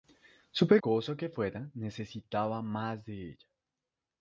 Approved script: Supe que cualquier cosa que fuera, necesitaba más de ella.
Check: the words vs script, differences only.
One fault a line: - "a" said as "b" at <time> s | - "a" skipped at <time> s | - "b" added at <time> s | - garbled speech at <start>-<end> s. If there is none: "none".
- "que cualquier" skipped at 0.8 s